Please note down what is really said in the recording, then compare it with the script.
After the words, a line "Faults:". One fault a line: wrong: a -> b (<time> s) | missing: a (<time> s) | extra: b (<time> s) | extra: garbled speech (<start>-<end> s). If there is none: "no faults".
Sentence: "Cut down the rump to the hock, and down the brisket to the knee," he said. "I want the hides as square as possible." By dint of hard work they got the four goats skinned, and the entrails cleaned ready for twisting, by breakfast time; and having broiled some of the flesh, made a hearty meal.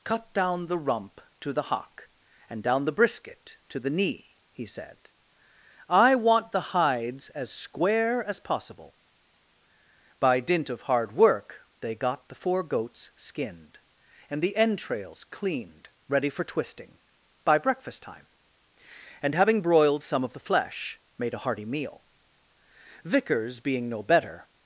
"Cut down the rump to the hock, and down the brisket to the knee," he said. "I want the hides as square as possible." By dint of hard work they got the four goats skinned, and the entrails cleaned ready for twisting, by breakfast time; and having broiled some of the flesh, made a hearty meal. Vickers being no better
Faults:
extra: Vickers being no better (23.1 s)